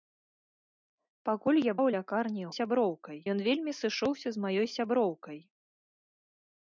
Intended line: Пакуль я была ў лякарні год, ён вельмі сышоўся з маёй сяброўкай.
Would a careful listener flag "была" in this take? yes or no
yes